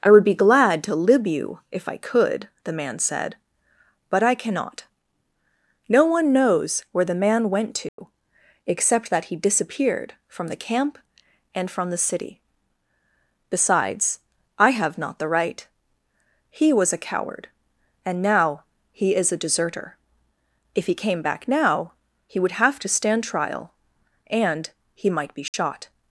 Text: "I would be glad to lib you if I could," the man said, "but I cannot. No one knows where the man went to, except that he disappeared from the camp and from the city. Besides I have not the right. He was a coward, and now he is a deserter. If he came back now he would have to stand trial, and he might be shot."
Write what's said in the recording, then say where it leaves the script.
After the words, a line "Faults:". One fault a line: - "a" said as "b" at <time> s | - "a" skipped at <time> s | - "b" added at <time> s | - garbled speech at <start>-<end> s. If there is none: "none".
"I would be glad to lib you if I could," the man said, "but I cannot. No one knows where the man went to, except that he disappeared from the camp and from the city. Besides I have not the right. He was a coward, and now he is a deserter. If he came back now he would have to stand trial, and he might be shot."
Faults:
none